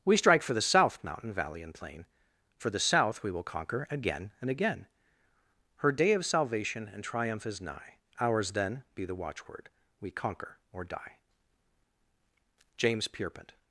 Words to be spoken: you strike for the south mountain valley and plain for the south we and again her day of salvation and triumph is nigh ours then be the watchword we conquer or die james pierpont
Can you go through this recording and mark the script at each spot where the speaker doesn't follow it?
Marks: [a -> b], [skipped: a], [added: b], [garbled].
[you -> we] strike for the south mountain valley and plain for the south we [added: will conquer again] and again her day of salvation and triumph is nigh ours then be the watchword we conquer or die james pierpont